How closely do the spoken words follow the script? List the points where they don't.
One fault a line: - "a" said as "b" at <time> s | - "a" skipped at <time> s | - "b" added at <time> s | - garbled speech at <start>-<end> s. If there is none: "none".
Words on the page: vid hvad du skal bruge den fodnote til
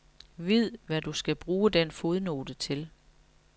none